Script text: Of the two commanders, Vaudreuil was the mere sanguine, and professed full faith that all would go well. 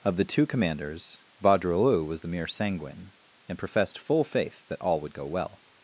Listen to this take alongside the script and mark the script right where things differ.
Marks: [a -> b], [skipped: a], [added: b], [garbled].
Of the two commanders, Vaudreuil was the mere sanguine, and professed full faith that all would go well.